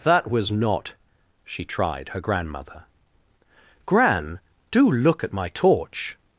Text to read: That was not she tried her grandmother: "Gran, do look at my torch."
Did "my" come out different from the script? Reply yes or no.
no